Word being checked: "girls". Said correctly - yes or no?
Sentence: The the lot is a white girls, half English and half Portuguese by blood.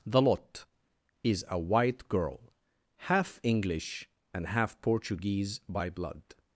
no